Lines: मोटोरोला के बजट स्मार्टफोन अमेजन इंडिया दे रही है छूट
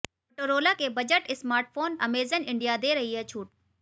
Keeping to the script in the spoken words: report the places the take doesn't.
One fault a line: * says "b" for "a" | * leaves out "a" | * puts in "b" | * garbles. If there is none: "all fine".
all fine